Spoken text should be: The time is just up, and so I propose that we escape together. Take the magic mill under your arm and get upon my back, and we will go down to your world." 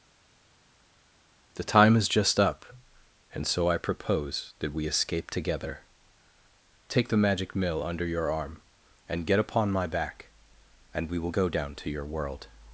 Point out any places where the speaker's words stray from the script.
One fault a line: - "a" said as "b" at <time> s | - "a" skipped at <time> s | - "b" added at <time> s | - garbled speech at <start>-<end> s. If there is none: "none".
none